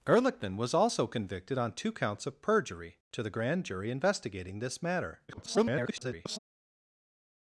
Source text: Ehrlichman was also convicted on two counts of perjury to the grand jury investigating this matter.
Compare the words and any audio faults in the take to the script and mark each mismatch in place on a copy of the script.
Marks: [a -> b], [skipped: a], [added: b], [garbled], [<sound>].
Ehrlichman was also convicted on two counts of perjury to the grand jury investigating this matter. [garbled]